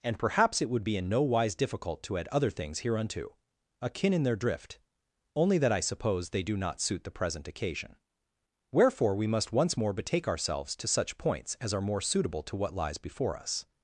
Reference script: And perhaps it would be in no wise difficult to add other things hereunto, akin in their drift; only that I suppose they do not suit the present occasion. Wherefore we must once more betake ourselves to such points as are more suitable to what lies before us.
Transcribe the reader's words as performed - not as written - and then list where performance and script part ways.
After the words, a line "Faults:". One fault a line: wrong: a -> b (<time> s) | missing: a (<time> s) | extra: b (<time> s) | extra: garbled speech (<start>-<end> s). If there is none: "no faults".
And perhaps it would be in no wise difficult to add other things hereunto, akin in their drift; only that I suppose they do not suit the present occasion. Wherefore we must once more betake ourselves to such points as are more suitable to what lies before us.
Faults:
no faults